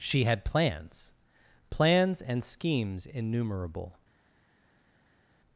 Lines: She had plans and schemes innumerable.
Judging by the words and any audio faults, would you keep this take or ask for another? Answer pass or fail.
fail